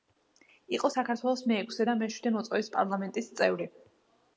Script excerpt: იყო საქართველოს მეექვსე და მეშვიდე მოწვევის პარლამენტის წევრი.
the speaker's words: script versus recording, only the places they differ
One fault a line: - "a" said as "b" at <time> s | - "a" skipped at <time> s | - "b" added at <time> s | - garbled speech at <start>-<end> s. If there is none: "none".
none